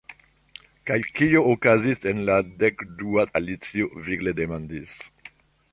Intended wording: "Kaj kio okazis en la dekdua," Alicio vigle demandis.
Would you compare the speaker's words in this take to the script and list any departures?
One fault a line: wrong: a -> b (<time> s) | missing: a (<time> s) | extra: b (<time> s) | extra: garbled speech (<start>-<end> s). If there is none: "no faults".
no faults